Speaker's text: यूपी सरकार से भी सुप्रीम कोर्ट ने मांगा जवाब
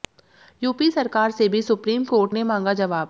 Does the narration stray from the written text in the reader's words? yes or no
no